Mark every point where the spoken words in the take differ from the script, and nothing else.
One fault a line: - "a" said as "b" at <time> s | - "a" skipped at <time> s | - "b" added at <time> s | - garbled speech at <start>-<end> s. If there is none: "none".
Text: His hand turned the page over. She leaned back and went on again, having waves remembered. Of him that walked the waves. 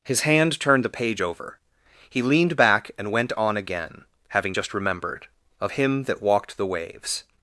- "She" said as "He" at 2.1 s
- "waves" said as "just" at 4.5 s